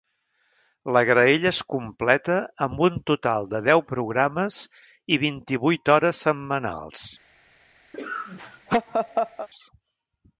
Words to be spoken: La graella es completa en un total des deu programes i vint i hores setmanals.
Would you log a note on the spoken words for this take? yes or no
yes